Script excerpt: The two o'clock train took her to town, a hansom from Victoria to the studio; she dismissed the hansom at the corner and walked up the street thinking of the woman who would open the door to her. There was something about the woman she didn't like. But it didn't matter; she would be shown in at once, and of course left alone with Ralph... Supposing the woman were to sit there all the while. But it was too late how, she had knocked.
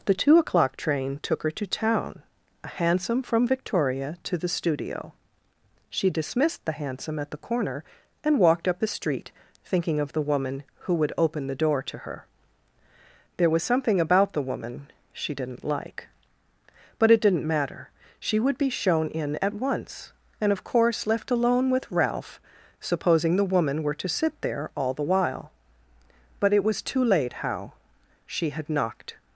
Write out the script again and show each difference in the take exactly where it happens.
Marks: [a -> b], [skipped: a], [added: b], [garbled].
The two o'clock train took her to town, a hansom from Victoria to the studio; she dismissed the hansom at the corner and walked up the street thinking of the woman who would open the door to her. There was something about the woman she didn't like. But it didn't matter; she would be shown in at once, and of course left alone with Ralph... Supposing the woman were to sit there all the while. But it was too late how, she had knocked.